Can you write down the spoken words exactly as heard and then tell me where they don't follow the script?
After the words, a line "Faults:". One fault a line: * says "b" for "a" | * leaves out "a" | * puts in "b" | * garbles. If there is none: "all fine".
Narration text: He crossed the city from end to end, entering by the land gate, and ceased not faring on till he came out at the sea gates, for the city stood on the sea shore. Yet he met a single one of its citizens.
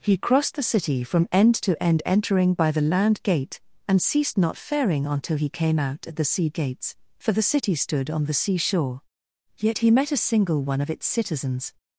He crossed the city from end to end, entering by the land gate, and ceased not faring on till he came out at the sea gates, for the city stood on the sea shore. Yet he met a single one of its citizens.
Faults:
all fine